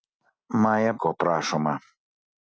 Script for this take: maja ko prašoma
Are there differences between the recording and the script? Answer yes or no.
no